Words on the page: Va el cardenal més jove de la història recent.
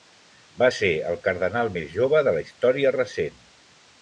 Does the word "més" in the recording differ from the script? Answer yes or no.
no